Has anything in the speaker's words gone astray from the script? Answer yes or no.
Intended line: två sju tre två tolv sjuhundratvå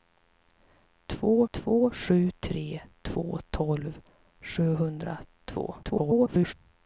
yes